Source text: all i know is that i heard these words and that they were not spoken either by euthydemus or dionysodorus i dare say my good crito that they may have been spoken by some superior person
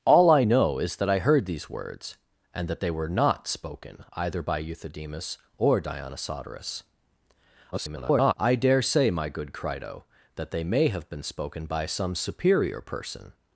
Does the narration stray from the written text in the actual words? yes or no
yes